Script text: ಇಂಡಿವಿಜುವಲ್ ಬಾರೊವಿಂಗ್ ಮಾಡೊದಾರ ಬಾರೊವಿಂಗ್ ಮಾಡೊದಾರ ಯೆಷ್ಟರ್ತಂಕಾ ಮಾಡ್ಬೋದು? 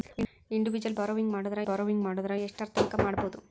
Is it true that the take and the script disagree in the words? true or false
false